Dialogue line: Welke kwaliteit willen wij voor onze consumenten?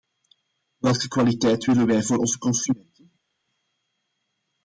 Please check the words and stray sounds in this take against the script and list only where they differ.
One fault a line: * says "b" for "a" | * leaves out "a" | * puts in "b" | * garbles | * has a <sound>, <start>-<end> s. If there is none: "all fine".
all fine